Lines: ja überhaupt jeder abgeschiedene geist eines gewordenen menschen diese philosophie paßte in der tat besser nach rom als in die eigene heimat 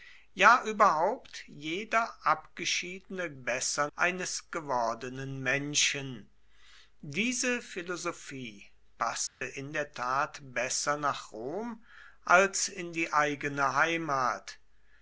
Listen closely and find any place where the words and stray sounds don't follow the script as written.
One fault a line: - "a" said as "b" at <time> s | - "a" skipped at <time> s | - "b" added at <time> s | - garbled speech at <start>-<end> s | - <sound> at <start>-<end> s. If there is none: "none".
- "geist" said as "besser" at 3.4 s
- dropout at 9.3-9.4 s